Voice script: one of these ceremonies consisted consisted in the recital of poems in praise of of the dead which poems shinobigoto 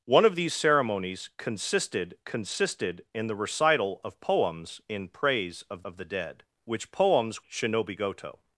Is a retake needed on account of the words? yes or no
no